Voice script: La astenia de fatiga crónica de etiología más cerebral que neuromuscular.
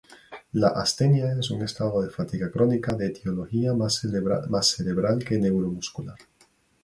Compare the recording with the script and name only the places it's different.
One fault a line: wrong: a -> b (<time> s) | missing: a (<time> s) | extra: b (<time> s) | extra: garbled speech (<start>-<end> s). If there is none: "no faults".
extra: es un estado (1.4 s)